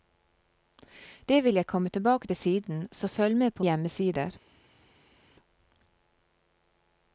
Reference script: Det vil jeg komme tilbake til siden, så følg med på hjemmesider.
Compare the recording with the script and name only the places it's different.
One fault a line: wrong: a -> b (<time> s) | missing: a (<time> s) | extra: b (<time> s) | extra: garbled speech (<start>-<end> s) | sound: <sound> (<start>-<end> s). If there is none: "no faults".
no faults